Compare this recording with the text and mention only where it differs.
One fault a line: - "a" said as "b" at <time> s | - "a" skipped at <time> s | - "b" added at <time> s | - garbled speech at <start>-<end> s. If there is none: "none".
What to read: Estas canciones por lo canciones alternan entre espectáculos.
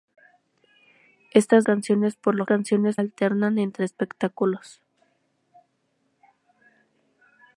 none